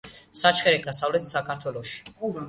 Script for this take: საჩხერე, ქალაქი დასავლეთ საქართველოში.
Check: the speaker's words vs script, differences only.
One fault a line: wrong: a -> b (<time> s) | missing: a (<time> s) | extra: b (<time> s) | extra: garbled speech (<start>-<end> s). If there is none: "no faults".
missing: ქალაქი (0.8 s)